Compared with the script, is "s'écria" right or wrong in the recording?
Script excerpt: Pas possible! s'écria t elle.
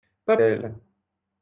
wrong